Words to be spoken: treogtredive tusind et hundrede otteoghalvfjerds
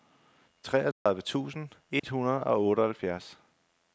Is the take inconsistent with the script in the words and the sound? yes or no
yes